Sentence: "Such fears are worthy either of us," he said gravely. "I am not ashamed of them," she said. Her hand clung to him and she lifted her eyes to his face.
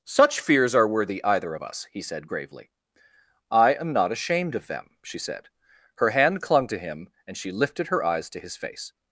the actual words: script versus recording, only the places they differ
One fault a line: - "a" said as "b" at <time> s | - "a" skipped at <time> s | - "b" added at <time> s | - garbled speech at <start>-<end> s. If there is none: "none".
none